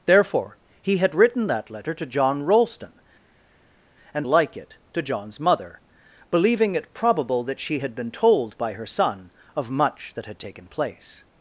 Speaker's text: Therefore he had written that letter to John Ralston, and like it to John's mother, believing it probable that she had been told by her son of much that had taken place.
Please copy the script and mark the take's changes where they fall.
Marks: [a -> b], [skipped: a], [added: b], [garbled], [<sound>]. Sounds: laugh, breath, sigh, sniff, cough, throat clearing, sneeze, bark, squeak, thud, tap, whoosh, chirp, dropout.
Therefore he had written that letter to John Ralston, and like it to John's mother, believing it probable that she had been told by her son of much that had taken place.